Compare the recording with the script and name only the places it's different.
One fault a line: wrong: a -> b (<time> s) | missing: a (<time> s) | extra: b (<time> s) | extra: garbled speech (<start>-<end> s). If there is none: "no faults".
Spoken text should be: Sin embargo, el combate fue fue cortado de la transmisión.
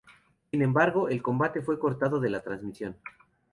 missing: fue (1.8 s)